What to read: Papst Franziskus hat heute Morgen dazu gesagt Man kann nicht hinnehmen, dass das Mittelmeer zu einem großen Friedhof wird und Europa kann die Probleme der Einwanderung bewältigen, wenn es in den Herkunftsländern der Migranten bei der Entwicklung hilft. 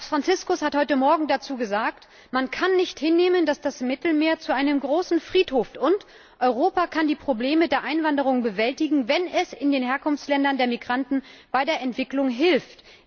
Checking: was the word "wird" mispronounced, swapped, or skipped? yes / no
yes